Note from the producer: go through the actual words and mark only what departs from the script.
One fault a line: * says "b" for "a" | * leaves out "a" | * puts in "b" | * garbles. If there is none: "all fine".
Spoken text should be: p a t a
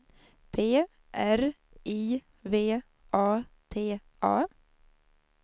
* puts in "r i v"